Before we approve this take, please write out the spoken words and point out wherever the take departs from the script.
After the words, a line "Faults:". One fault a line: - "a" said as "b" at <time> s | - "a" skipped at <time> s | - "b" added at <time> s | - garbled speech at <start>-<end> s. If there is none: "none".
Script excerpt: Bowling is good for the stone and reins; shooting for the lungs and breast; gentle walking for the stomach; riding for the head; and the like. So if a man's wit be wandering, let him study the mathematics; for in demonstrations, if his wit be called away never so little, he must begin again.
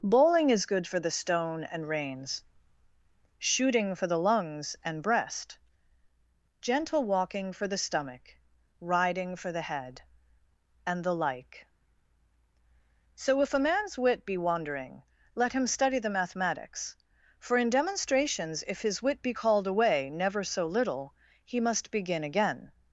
Bowling is good for the stone and reins; shooting for the lungs and breast; gentle walking for the stomach; riding for the head; and the like. So if a man's wit be wandering, let him study the mathematics; for in demonstrations, if his wit be called away never so little, he must begin again.
Faults:
none